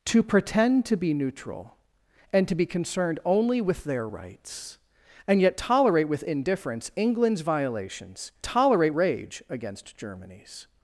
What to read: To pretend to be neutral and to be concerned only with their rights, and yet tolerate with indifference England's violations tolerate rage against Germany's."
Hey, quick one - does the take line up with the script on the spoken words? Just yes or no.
yes